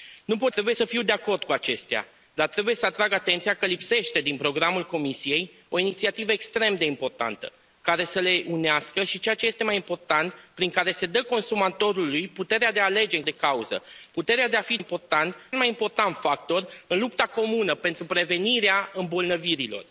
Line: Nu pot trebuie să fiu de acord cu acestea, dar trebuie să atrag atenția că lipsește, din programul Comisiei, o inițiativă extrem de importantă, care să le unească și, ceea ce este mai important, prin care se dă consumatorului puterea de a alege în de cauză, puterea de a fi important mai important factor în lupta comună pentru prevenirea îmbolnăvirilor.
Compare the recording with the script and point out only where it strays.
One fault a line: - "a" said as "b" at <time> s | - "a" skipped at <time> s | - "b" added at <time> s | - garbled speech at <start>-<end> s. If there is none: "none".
none